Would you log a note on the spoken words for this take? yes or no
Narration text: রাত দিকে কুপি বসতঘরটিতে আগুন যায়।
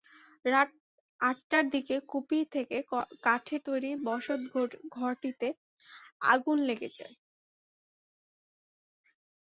yes